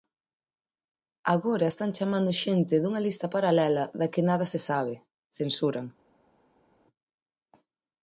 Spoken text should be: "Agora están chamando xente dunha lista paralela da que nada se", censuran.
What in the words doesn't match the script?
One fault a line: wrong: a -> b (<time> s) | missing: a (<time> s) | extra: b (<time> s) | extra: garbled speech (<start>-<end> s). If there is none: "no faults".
extra: sabe (4.7 s)